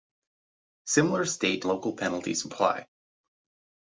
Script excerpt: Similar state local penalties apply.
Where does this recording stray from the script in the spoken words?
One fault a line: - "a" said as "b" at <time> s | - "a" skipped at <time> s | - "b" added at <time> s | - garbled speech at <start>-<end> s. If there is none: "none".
none